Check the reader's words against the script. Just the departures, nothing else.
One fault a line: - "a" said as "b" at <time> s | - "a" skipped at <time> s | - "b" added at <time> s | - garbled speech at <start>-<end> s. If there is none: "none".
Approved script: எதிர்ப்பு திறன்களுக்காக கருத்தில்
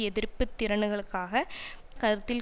none